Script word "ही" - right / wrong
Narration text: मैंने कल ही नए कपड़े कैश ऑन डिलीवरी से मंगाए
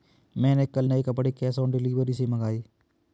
wrong